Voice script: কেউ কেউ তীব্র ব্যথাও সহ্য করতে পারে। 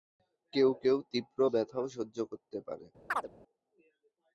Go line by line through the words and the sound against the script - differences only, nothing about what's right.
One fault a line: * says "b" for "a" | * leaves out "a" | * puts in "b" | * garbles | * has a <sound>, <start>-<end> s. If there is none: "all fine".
* has a chirp, 3.1-3.3 s